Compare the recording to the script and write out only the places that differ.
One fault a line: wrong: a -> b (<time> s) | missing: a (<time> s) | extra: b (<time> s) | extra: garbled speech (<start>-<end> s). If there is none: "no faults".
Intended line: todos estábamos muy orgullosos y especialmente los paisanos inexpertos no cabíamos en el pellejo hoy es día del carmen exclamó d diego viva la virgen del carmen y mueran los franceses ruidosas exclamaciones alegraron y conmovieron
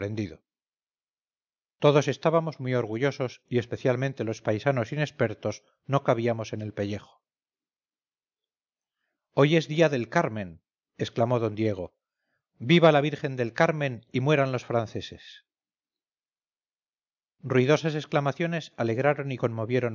no faults